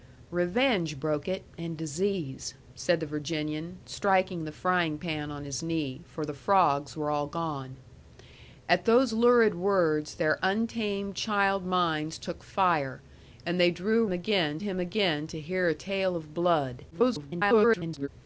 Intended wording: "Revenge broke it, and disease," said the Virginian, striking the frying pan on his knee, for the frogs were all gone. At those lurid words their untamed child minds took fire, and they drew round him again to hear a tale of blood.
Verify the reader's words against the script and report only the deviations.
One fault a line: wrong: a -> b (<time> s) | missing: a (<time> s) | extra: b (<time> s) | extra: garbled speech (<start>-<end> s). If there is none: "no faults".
wrong: round -> again (14.1 s)
extra: garbled speech (16.9-18.1 s)